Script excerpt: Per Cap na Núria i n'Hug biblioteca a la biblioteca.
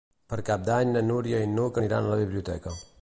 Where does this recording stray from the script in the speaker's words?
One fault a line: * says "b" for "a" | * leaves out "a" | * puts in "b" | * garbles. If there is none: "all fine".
* puts in "d'Any"
* says "aniran" for "biblioteca"